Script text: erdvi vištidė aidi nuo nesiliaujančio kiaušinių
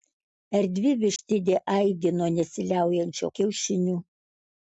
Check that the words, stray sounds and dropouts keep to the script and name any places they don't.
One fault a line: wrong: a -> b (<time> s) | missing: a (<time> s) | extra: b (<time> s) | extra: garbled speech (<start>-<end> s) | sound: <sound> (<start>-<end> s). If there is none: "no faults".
sound: dropout (1.2-1.2 s)